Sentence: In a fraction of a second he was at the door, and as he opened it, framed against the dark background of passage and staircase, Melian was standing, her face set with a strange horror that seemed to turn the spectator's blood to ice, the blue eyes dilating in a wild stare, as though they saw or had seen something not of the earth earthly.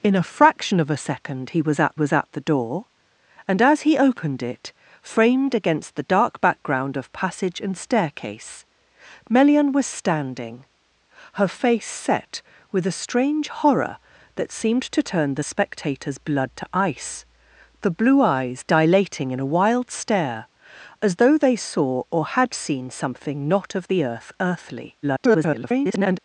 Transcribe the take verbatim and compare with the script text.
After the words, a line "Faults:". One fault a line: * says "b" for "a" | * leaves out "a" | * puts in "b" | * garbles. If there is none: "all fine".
In a fraction of a second he was at was at the door, and as he opened it, framed against the dark background of passage and staircase, Melian was standing, her face set with a strange horror that seemed to turn the spectator's blood to ice, the blue eyes dilating in a wild stare, as though they saw or had seen something not of the earth earthly. [garbled]
Faults:
* puts in "was at"
* garbles